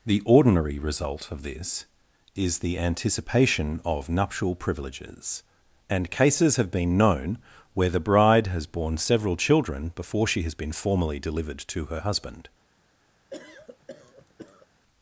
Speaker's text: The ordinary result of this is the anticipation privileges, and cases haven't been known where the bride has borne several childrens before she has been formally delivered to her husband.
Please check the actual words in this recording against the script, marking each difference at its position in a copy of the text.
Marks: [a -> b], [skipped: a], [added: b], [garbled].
The ordinary result of this is the anticipation [added: of nuptial] privileges, and cases [haven't -> have] been known where the bride has borne several [childrens -> children] before she has been formally delivered to her husband.